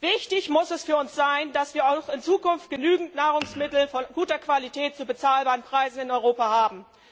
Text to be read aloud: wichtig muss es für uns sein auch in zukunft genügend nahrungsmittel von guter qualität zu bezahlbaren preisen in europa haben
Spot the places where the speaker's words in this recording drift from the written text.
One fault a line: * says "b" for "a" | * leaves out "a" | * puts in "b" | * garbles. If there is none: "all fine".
* puts in "dass wir"